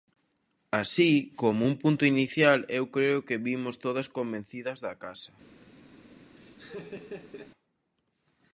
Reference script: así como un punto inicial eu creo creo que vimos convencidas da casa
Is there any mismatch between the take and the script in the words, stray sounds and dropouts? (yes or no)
yes